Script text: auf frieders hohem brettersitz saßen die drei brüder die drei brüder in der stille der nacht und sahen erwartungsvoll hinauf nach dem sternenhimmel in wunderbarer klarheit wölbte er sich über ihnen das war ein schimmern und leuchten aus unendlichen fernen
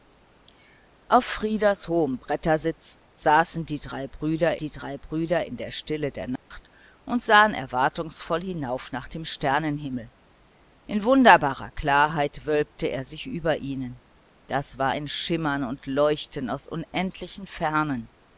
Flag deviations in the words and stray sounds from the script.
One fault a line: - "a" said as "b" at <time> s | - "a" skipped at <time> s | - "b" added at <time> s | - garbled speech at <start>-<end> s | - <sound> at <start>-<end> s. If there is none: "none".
- dropout at 6.4-6.5 s